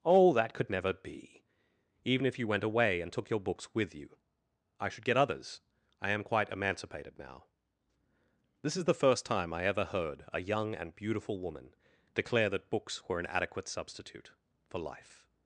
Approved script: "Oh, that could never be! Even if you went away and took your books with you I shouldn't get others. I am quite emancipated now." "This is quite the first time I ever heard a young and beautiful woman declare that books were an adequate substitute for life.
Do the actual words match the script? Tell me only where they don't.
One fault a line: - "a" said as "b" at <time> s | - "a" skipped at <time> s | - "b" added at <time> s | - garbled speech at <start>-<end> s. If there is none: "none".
- "shouldn't" said as "should" at 4.9 s
- "quite" skipped at 8.8 s